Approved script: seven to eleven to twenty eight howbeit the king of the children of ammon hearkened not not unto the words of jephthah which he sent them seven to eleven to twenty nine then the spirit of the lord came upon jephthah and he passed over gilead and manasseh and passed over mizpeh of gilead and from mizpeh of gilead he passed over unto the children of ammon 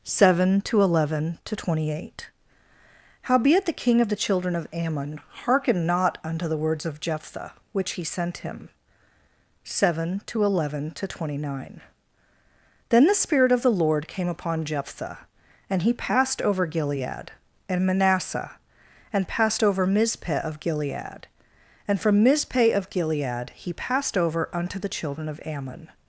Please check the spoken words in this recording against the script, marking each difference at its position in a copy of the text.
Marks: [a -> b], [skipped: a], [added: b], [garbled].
seven to eleven to twenty eight howbeit the king of the children of ammon hearkened not [skipped: not] unto the words of jephthah which he sent [them -> him] seven to eleven to twenty nine then the spirit of the lord came upon jephthah and he passed over gilead and manasseh and passed over mizpeh of gilead and from mizpeh of gilead he passed over unto the children of ammon